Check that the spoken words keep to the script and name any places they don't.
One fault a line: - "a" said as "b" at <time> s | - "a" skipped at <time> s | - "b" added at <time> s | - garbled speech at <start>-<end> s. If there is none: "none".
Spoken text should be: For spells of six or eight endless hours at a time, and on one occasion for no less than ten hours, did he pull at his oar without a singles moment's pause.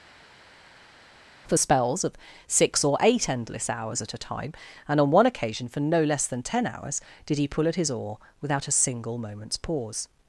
- "singles" said as "single" at 8.7 s